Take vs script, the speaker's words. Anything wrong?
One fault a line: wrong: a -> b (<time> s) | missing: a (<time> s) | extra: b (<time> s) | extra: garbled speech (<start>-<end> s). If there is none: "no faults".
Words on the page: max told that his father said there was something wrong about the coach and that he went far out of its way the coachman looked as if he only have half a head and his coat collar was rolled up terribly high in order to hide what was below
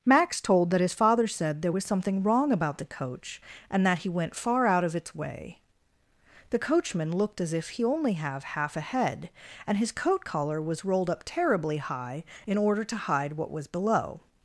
no faults